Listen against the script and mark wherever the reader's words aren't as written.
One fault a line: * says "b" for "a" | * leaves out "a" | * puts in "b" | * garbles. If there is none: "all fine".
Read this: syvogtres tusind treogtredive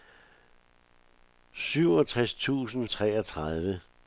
all fine